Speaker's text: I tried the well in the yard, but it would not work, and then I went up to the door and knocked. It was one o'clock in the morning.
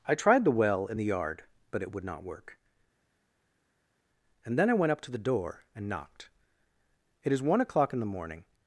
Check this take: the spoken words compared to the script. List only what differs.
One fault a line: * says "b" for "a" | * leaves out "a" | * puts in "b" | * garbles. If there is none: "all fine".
* says "is" for "was"